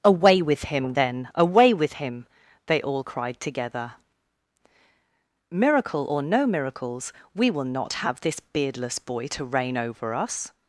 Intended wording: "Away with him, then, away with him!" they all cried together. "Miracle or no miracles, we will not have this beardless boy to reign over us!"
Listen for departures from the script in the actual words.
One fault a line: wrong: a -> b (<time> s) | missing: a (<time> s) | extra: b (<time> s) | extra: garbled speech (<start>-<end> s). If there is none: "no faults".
no faults